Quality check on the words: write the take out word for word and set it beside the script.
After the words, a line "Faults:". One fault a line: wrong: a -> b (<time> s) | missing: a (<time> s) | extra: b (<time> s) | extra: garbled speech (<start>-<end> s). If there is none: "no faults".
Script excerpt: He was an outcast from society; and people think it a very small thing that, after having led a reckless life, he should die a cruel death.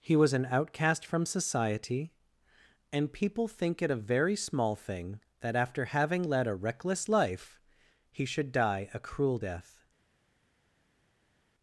He was an outcast from society; and people think it a very small thing that, after having led a reckless life, he should die a cruel death.
Faults:
no faults